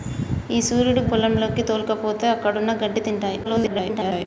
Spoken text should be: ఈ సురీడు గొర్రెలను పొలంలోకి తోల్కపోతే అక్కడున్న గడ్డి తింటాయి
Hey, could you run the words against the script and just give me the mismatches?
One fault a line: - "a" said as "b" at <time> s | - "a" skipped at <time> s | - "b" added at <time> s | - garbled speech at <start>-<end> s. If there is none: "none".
- "గొర్రెలను" skipped at 1.0 s
- garbled speech at 3.4-4.3 s